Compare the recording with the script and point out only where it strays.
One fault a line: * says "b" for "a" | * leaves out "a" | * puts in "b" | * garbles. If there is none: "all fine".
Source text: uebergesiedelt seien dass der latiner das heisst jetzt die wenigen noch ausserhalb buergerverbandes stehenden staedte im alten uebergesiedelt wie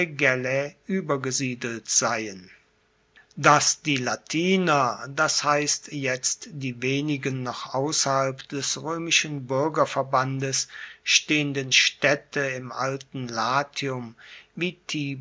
* says "die" for "der"
* puts in "des roemischen"
* says "latium" for "uebergesiedelt"